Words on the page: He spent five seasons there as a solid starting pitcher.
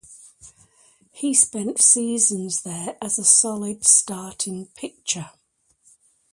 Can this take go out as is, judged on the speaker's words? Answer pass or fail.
fail